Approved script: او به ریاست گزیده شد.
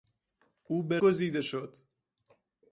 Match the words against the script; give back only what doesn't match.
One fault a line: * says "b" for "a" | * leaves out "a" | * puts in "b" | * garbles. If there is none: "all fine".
* leaves out "ریاست"